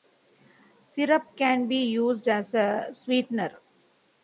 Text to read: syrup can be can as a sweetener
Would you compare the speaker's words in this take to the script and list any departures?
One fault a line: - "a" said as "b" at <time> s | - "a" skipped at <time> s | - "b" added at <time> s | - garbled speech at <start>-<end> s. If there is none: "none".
- "can" said as "used" at 1.9 s